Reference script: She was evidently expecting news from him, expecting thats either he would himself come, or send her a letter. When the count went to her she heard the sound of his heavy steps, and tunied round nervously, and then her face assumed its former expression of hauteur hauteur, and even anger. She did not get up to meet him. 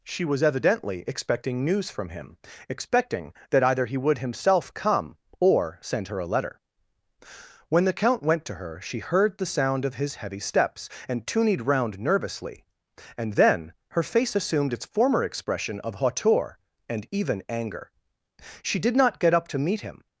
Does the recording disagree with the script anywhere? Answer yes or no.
yes